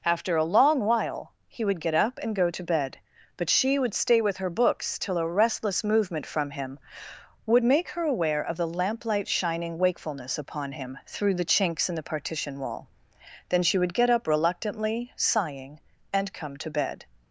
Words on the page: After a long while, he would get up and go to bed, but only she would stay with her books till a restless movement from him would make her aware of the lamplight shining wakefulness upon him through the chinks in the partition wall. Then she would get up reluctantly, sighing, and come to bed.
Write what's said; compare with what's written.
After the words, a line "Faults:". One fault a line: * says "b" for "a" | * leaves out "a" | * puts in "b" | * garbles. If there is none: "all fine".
After a long while, he would get up and go to bed, but she would stay with her books till a restless movement from him would make her aware of the lamplight shining wakefulness upon him through the chinks in the partition wall. Then she would get up reluctantly, sighing, and come to bed.
Faults:
* leaves out "only"